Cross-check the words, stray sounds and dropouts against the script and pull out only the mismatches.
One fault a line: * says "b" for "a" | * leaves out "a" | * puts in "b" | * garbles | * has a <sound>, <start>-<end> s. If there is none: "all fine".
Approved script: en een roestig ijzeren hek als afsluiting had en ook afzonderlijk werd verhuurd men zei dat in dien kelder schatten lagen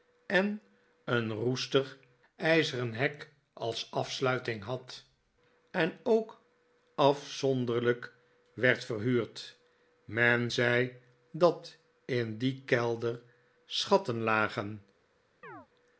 * has a chirp, 15.4-15.7 s